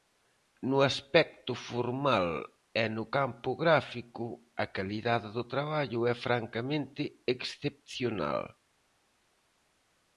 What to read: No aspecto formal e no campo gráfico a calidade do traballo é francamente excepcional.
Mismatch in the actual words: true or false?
false